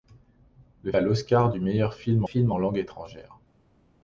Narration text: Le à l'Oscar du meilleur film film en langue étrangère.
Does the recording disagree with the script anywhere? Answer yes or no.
no